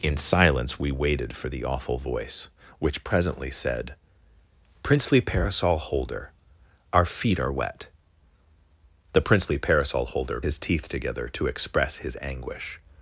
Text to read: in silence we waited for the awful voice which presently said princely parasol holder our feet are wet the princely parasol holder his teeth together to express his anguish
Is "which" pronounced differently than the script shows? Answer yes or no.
no